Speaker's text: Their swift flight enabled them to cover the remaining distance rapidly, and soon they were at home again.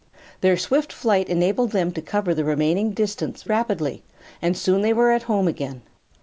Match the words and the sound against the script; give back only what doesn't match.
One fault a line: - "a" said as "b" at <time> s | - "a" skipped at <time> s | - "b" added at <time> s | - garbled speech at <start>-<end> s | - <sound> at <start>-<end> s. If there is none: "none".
none